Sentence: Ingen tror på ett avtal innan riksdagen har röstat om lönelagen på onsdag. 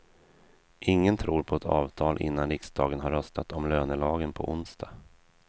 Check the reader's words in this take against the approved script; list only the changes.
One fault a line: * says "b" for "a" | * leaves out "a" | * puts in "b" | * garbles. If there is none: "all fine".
all fine